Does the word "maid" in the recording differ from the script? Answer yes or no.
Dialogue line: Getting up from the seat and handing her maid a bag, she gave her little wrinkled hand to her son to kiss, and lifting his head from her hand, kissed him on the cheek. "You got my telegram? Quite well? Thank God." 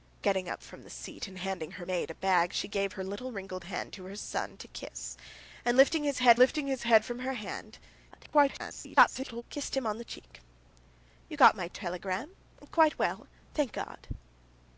no